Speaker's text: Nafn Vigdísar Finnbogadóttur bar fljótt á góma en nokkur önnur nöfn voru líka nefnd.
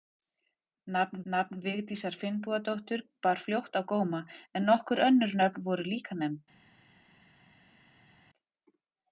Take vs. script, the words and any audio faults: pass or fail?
fail